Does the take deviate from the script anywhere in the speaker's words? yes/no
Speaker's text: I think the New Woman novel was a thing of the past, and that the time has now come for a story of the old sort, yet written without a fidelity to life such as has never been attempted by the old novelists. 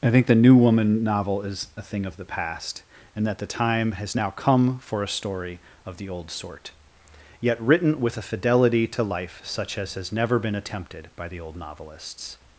yes